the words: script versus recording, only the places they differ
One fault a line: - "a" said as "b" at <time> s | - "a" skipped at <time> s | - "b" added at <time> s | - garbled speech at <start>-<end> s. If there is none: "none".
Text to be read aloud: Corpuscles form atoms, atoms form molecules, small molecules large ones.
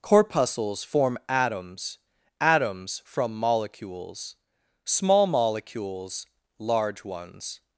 - "form" said as "from" at 3.0 s